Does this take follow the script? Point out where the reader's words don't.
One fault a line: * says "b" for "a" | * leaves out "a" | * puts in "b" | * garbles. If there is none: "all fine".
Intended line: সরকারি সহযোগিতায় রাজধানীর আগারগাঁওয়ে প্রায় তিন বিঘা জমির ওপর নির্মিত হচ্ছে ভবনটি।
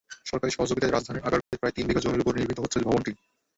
all fine